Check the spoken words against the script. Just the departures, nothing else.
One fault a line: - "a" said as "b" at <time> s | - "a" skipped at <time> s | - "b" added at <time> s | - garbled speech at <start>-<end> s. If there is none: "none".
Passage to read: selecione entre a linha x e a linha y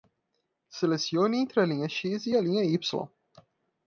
none